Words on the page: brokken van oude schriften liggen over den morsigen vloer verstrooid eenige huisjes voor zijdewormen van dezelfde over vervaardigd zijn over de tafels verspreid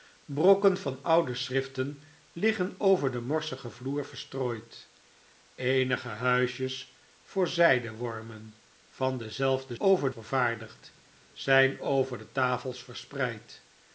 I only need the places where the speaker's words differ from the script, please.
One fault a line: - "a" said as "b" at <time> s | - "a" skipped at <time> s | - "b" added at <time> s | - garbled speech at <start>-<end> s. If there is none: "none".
none